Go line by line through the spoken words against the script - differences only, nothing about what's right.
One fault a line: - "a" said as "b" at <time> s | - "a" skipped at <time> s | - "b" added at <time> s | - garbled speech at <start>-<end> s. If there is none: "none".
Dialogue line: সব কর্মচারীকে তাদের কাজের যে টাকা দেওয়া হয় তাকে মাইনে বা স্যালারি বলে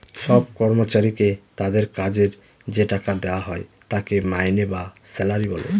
none